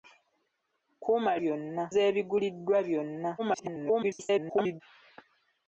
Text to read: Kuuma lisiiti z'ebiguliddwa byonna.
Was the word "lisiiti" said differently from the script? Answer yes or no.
yes